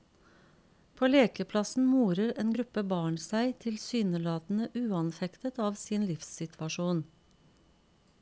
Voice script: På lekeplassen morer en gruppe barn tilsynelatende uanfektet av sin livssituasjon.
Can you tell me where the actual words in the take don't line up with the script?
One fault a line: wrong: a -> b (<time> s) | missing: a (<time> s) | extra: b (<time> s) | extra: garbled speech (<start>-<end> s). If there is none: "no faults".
extra: seg (3.2 s)